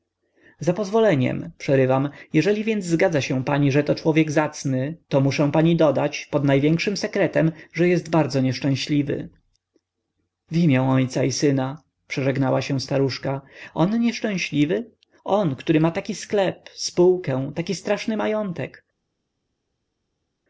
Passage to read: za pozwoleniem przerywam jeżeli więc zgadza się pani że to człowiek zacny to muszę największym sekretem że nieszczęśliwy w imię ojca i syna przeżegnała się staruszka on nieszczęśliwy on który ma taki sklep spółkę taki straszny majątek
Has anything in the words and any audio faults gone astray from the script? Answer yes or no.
yes